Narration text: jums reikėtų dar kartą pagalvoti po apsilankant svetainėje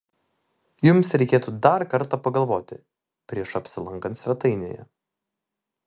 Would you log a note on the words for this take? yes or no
yes